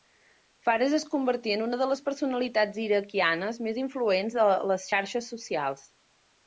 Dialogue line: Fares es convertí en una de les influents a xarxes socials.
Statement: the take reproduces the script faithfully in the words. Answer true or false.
false